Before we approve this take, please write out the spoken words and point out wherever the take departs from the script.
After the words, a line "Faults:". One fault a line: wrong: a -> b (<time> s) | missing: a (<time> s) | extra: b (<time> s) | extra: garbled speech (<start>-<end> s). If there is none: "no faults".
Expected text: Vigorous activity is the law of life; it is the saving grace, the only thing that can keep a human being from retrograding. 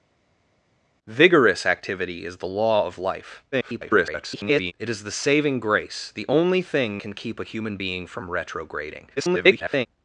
Vigorous activity is the law of life; [garbled] it is the saving grace, the only thing can keep a human being from retrograding. [garbled]
Faults:
extra: garbled speech (3.5-4.7 s)
missing: that (7.0 s)
extra: garbled speech (9.2-9.9 s)